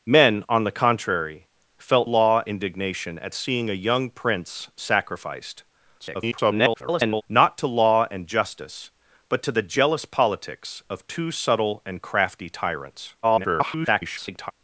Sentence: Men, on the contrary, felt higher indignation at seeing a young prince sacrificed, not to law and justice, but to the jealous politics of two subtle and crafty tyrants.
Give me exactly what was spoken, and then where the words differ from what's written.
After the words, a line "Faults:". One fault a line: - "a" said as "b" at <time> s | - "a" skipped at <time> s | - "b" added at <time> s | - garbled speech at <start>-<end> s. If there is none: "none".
Men, on the contrary, felt law indignation at seeing a young prince sacrificed, [garbled] not to law and justice, but to the jealous politics of two subtle and crafty tyrants. [garbled]
Faults:
- "higher" said as "law" at 2.0 s
- garbled speech at 6.0-7.2 s
- garbled speech at 13.2-14.5 s